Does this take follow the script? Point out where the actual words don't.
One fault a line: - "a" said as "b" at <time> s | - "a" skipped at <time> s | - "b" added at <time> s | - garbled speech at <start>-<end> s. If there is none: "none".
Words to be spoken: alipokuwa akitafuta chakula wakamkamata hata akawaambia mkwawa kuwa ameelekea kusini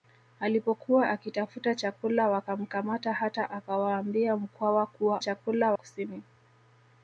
- "ameelekea" said as "chakula" at 5.2 s